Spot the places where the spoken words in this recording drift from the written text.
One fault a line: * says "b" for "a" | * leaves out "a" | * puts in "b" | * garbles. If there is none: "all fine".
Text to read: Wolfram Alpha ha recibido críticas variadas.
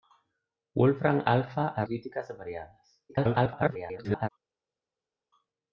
* leaves out "recibido"
* garbles